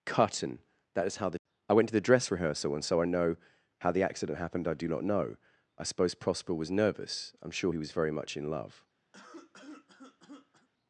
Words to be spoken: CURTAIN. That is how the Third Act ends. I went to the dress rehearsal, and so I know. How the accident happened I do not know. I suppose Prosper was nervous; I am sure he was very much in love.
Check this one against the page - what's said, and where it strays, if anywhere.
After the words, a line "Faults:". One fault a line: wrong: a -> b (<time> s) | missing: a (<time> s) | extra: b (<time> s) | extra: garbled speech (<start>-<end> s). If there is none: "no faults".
CURTAIN. That is how the. I went to the dress rehearsal, and so I know. How the accident happened I do not know. I suppose Prosper was nervous; I am sure he was very much in love.
Faults:
missing: Third Act ends (1.4 s)